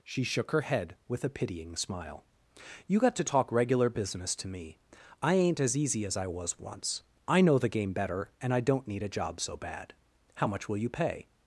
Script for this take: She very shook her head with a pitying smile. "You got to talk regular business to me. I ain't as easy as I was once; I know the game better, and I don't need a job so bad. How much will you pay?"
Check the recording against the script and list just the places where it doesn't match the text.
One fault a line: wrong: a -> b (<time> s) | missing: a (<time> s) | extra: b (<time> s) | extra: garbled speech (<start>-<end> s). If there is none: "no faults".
missing: very (0.2 s)